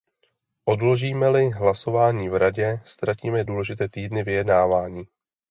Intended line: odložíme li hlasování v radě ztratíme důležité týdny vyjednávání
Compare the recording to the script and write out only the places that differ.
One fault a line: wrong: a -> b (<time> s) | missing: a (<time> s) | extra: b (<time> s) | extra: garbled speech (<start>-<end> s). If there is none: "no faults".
no faults